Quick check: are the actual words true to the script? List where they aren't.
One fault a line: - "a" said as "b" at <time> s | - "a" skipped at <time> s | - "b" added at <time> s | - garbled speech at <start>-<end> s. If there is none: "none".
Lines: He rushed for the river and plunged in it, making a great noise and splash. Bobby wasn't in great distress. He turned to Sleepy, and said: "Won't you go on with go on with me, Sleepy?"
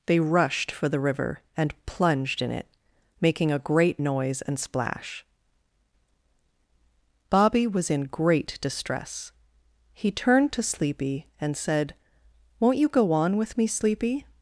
- "He" said as "They" at 0.1 s
- "wasn't" said as "was" at 7.7 s
- "go on with" skipped at 13.6 s